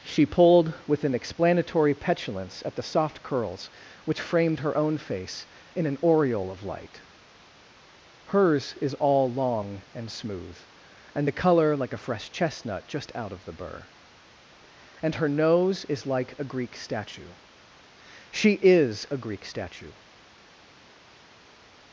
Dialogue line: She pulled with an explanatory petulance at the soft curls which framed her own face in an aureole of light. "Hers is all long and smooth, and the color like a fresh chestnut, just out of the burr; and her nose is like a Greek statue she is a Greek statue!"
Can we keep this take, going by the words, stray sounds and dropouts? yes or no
yes